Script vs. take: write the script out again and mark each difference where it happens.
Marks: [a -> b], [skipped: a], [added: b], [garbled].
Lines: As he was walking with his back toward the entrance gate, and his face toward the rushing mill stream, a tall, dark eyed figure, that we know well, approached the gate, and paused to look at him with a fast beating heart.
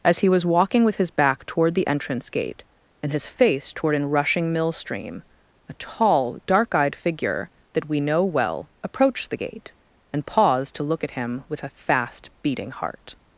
As he was walking with his back toward the entrance gate, and his face toward [the -> an] rushing mill stream, a tall, dark eyed figure, that we know well, approached the gate, and paused to look at him with a fast beating heart.